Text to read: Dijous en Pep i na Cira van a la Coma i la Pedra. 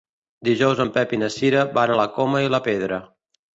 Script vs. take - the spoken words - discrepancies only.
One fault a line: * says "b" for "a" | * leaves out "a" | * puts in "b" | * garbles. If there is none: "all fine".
all fine